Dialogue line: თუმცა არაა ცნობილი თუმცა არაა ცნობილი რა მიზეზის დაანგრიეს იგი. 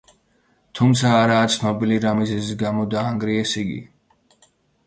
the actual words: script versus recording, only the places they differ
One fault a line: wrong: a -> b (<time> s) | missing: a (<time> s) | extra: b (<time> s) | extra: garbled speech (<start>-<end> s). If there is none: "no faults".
missing: თუმცა არაა ცნობილი (2.0 s)
extra: გამო (2.6 s)